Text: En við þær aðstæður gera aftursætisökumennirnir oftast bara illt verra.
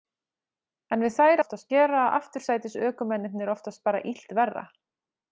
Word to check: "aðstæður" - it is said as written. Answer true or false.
false